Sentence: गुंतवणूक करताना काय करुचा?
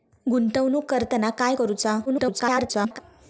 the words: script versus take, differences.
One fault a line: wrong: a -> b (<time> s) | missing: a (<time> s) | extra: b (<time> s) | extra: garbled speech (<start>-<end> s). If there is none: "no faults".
extra: garbled speech (2.1-3.0 s)